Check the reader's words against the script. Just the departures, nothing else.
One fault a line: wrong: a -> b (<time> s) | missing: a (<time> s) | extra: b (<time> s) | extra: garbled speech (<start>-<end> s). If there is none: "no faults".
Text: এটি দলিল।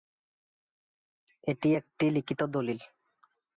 extra: একটি লিখিত (1.7 s)